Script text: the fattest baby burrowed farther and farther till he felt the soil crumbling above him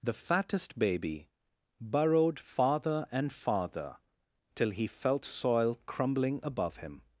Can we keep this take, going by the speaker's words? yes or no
no